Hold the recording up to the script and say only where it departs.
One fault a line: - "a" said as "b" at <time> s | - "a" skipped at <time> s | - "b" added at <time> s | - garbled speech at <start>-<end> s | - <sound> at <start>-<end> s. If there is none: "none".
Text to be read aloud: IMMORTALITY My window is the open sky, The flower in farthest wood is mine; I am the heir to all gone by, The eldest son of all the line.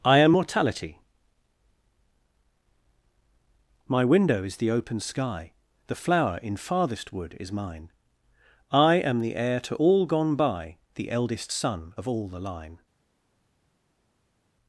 - "IMMORTALITY" said as "I am mortality" at 0.0 s